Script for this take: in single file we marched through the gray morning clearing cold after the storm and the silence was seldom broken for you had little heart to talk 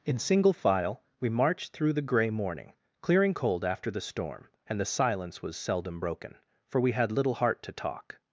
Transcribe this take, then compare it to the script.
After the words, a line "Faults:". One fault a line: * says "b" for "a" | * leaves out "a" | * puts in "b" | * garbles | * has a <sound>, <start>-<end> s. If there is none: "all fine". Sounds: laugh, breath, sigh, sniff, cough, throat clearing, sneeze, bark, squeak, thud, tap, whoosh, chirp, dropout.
in single file we marched through the gray morning clearing cold after the storm and the silence was seldom broken for we had little heart to talk
Faults:
* says "we" for "you"